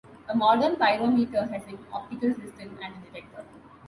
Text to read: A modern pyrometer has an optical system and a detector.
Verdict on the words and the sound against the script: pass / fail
pass